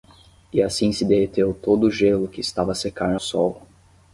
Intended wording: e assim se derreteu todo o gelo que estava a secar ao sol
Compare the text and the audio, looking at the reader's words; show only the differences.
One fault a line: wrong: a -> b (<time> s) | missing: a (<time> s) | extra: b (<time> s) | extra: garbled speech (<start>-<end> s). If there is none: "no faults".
missing: ao (3.1 s)